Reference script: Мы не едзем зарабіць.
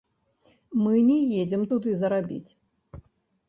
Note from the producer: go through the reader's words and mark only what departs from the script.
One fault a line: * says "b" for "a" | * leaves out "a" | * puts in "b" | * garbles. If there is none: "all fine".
* puts in "туды"